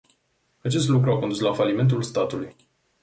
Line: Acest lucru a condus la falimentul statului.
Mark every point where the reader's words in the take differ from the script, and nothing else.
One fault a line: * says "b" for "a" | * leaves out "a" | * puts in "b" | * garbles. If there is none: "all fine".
all fine